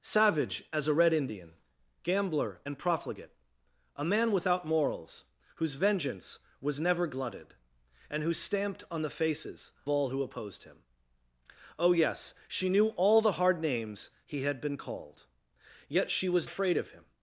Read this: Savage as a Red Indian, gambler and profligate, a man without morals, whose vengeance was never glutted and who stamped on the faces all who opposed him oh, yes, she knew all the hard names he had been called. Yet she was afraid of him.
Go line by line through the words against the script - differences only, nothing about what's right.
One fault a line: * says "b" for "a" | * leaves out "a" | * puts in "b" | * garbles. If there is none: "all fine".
all fine